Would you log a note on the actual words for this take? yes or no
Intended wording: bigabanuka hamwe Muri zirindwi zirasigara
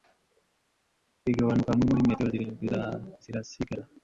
yes